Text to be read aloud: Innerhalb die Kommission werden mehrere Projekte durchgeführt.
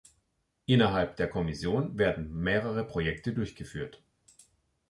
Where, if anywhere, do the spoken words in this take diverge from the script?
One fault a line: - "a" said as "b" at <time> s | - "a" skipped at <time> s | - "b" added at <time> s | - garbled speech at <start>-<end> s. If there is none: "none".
- "die" said as "der" at 1.2 s